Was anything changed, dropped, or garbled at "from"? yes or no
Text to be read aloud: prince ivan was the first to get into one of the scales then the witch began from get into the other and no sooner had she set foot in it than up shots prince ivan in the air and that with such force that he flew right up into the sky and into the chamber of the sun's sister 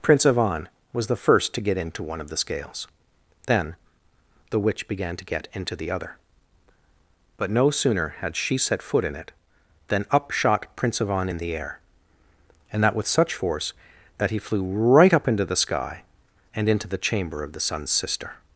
yes